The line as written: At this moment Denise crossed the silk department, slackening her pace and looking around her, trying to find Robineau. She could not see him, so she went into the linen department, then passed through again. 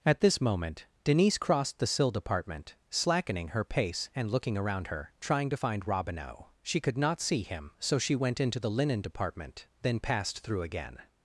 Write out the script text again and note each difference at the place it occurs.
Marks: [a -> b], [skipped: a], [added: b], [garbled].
At this moment Denise crossed the [silk -> sill] department, slackening her pace and looking around her, trying to find Robineau. She could not see him, so she went into the linen department, then passed through again.